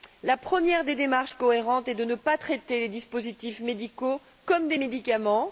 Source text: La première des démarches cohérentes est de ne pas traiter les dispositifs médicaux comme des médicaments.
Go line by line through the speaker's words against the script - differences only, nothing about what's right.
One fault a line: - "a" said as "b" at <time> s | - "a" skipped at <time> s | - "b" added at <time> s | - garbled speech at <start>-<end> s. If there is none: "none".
none